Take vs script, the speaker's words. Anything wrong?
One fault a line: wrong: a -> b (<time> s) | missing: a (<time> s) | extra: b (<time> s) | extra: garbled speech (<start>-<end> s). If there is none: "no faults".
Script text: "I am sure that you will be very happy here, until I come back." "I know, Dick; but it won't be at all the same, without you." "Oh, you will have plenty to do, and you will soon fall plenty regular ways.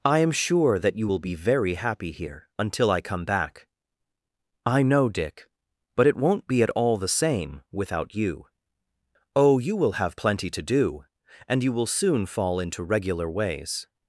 wrong: plenty -> into (12.6 s)